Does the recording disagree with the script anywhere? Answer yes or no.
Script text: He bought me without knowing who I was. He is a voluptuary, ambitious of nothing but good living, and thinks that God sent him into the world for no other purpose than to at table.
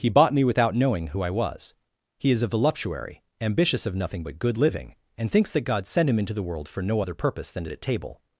no